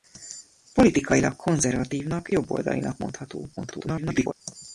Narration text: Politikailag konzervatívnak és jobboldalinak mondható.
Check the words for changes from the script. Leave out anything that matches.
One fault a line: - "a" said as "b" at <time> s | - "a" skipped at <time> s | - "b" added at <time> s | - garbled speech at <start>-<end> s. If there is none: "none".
- "és" skipped at 2.3 s
- garbled speech at 3.6-4.3 s